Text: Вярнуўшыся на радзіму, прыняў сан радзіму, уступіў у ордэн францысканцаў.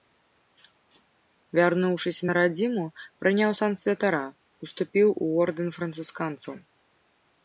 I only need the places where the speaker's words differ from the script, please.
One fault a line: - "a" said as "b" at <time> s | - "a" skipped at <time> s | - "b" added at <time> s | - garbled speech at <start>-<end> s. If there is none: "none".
- "радзіму" said as "святара" at 3.8 s